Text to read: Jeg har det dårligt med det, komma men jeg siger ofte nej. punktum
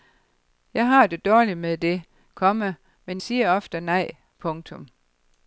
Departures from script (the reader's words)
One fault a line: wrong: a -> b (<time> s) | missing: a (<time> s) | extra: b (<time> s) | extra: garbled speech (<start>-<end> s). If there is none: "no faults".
missing: jeg (3.2 s)